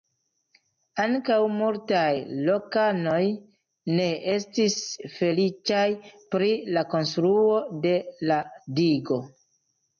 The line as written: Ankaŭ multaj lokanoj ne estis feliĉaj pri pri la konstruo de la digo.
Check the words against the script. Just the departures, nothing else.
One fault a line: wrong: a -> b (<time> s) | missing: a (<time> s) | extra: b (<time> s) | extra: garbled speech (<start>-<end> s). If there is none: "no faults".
missing: pri (6.5 s)